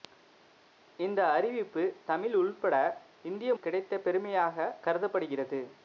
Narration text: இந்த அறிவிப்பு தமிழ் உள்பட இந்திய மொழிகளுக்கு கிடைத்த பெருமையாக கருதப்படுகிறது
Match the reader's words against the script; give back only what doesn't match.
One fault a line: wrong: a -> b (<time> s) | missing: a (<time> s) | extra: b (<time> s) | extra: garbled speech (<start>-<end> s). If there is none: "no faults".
missing: மொழிகளுக்கு (3.5 s)